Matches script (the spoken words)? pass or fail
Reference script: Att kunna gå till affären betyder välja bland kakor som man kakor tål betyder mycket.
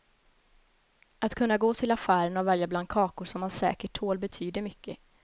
fail